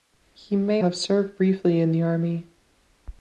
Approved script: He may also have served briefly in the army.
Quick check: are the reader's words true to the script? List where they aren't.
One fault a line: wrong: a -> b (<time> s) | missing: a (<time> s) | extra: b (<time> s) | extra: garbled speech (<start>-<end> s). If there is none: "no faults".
missing: also (0.8 s)